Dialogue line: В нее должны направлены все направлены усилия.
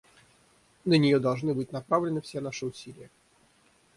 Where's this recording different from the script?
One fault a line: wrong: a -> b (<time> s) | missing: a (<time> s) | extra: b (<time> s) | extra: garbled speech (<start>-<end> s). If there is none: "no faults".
wrong: В -> На (0.8 s)
extra: быть (1.5 s)
wrong: направлены -> наши (2.4 s)